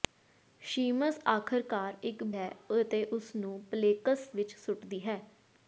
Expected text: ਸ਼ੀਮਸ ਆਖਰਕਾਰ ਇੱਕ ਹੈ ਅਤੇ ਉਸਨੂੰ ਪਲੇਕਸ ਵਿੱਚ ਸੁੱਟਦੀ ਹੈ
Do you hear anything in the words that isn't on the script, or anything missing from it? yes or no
no